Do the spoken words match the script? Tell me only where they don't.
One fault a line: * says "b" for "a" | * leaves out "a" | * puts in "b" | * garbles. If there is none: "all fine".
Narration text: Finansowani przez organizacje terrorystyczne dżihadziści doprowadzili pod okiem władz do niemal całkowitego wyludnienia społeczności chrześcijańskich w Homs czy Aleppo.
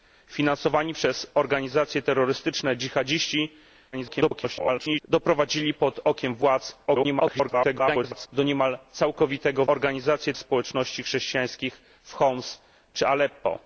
* garbles
* garbles
* says "organizacje" for "wyludnienia"